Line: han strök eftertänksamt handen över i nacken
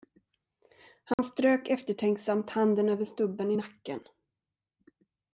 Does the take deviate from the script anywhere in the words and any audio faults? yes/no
yes